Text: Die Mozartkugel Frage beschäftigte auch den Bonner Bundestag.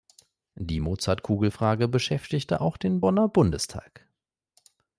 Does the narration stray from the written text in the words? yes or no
no